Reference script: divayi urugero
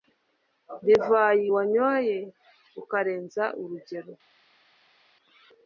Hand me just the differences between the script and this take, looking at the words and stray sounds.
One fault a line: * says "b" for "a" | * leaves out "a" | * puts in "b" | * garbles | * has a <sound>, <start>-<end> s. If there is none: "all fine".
* puts in "wanyoye ukarenza"